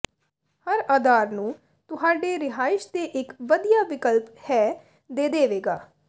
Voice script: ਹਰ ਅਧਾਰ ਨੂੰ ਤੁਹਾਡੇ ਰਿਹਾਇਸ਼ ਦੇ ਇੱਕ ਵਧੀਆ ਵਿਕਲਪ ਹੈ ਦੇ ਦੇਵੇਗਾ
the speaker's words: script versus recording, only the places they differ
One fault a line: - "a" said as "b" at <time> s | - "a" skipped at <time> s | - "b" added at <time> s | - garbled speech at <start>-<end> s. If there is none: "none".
none